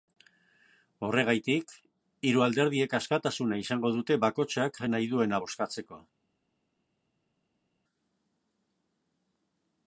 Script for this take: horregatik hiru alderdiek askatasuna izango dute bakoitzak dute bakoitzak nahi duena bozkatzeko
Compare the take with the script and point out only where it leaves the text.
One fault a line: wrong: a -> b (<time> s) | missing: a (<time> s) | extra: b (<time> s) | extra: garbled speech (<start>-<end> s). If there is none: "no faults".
missing: dute bakoitzak (4.8 s)